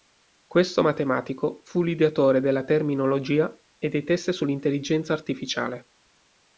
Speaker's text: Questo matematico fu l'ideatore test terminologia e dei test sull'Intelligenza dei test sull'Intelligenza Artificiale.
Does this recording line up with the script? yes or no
no